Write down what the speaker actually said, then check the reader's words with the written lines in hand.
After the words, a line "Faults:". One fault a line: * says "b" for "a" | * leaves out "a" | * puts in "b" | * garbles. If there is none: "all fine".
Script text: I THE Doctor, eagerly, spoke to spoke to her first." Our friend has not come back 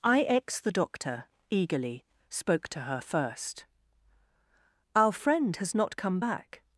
I X THE Doctor, eagerly, spoke to her first." Our friend has not come back
Faults:
* puts in "X"
* leaves out "spoke to"